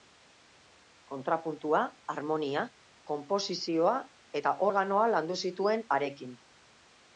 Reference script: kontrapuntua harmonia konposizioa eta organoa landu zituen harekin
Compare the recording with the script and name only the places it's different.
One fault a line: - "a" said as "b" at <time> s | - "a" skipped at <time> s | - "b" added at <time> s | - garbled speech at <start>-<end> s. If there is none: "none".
none